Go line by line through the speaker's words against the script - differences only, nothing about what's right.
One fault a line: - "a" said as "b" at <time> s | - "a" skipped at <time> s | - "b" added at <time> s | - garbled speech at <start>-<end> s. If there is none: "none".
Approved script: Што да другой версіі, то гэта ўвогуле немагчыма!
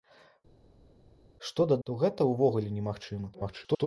- "другой версіі" skipped at 1.8 s
- garbled speech at 3.3-3.9 s